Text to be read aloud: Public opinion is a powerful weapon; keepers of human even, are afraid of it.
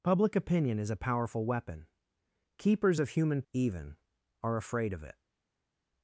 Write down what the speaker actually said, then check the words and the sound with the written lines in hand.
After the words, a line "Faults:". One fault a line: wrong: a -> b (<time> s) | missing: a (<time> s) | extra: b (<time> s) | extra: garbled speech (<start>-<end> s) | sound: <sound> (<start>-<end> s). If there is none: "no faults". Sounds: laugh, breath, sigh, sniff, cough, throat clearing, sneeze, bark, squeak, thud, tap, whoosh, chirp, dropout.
Public opinion is a powerful weapon; keepers of human even, are afraid of it.
Faults:
no faults